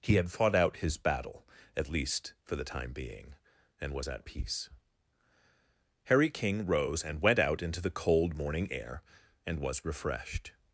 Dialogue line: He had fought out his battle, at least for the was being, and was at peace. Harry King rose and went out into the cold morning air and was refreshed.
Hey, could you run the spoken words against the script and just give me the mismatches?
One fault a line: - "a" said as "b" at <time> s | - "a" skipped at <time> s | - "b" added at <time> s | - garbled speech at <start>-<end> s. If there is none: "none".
- "was" said as "time" at 2.6 s